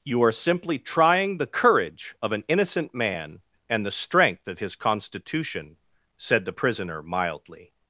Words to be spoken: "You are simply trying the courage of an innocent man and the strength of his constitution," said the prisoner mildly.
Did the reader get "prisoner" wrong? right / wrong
right